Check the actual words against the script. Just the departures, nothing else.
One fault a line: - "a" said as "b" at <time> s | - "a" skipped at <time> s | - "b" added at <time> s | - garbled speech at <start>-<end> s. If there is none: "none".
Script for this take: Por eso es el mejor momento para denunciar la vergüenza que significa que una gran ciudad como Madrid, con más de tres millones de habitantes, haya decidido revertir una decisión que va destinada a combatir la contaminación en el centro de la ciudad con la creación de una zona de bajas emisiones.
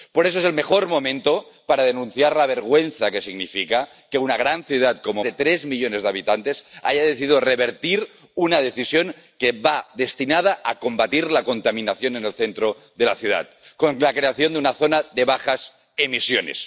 - "Madrid con más" skipped at 5.2 s